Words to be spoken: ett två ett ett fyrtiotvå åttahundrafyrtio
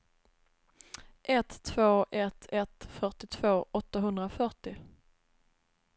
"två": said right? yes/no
yes